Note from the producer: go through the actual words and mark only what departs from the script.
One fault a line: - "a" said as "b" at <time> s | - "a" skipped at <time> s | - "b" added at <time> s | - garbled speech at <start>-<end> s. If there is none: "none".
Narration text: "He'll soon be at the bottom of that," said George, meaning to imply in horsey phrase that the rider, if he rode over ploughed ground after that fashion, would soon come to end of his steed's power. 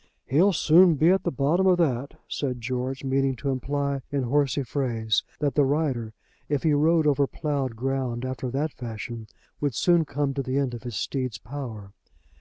- "the" added at 10.4 s